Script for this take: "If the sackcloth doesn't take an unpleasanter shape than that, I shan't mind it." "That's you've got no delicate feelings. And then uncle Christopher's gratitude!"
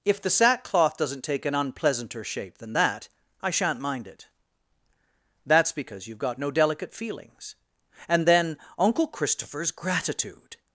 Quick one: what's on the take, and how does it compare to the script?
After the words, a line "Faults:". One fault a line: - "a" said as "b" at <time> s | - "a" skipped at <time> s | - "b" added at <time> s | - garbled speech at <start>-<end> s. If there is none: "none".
"If the sackcloth doesn't take an unpleasanter shape than that, I shan't mind it." "That's because you've got no delicate feelings. And then uncle Christopher's gratitude!"
Faults:
- "because" added at 5.7 s